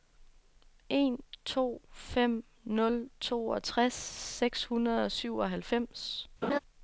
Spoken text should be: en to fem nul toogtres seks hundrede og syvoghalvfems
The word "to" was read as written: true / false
true